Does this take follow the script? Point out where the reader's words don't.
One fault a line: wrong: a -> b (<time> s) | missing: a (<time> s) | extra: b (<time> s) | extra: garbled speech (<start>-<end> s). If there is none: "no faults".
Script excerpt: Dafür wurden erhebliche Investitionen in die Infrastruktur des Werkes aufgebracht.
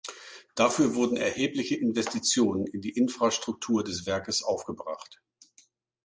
no faults